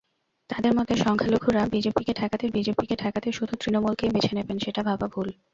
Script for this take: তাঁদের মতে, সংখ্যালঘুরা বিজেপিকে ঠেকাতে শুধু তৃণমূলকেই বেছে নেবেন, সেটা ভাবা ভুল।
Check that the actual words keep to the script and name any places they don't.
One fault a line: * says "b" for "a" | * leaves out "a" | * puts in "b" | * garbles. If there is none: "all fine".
* puts in "বিজেপিকে ঠেকাতে"